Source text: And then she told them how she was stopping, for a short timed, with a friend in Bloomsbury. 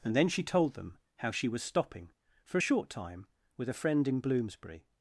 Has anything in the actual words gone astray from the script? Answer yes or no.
yes